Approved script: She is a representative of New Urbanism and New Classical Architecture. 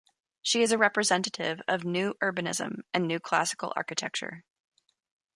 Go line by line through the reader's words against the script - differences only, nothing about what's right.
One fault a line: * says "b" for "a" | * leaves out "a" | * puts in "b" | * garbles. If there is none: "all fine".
all fine